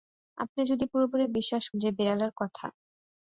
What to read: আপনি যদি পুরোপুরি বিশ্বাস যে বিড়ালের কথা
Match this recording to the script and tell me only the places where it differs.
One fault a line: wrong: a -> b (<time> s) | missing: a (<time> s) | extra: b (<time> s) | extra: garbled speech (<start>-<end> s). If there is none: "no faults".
no faults